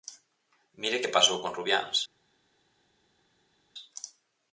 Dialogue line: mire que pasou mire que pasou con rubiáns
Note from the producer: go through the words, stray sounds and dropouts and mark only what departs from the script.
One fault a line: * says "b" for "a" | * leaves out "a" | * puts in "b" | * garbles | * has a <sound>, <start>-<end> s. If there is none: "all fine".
* leaves out "mire que pasou"